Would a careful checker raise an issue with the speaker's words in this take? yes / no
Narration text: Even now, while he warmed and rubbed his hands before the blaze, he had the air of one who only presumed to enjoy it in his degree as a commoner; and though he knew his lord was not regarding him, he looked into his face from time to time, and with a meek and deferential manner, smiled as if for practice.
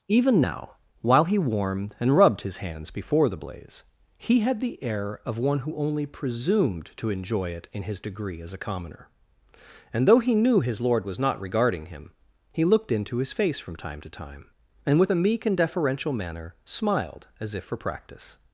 no